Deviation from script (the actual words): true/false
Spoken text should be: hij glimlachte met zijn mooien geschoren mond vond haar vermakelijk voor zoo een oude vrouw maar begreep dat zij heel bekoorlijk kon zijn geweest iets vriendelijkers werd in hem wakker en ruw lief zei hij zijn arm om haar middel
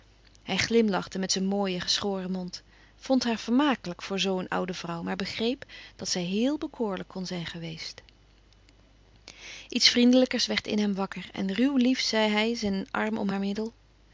false